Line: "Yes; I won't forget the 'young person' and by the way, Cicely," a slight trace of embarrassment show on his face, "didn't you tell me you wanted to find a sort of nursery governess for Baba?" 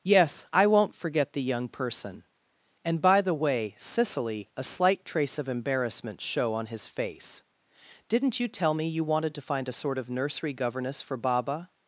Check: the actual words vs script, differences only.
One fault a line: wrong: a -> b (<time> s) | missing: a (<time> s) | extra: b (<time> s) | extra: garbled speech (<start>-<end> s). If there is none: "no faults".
no faults